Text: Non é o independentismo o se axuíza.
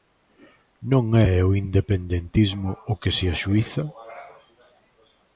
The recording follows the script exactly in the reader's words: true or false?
false